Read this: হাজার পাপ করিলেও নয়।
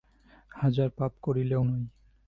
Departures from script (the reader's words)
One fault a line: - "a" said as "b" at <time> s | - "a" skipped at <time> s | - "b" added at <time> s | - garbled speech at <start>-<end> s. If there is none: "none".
none